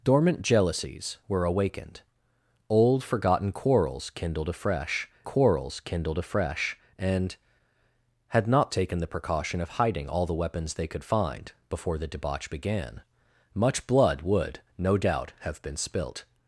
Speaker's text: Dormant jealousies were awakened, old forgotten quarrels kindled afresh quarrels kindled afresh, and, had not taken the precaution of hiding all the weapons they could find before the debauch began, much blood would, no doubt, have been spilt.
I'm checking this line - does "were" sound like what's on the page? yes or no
yes